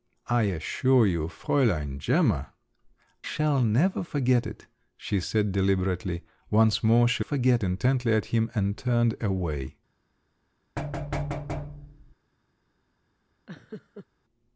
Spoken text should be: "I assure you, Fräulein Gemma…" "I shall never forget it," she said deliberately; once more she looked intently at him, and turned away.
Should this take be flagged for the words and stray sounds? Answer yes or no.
yes